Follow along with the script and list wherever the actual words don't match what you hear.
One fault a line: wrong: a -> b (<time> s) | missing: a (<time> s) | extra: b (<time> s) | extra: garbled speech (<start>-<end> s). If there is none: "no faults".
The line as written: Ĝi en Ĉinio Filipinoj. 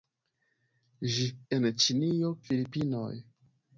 no faults